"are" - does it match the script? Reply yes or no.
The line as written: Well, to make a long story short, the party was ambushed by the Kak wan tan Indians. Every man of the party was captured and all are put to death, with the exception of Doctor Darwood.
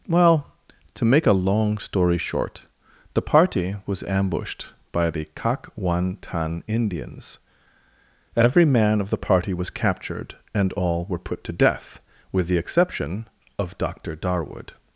no